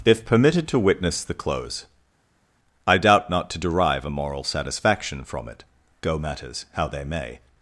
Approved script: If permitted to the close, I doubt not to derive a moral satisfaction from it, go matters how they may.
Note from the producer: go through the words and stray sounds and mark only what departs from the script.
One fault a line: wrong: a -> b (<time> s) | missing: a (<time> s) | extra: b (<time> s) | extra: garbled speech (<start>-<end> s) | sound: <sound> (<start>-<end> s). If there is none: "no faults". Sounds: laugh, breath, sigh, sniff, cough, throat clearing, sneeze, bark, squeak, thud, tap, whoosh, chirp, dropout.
extra: witness (0.8 s)